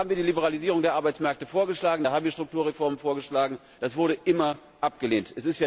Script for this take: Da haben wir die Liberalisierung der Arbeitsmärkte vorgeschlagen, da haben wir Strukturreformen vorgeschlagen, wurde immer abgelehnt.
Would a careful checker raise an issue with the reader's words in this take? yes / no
yes